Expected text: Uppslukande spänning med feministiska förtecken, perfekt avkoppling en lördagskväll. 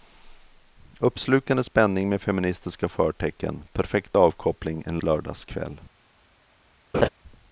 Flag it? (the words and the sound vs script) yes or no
yes